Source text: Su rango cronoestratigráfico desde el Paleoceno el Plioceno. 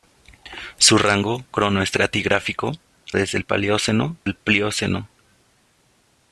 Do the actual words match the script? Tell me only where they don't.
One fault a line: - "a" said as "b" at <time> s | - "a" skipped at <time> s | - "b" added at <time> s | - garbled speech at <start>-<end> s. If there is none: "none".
none